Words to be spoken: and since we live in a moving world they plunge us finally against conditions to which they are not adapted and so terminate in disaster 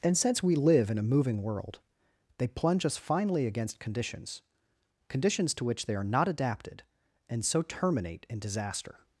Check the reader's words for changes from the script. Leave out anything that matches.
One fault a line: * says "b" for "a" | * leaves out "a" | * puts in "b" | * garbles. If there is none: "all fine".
* puts in "conditions"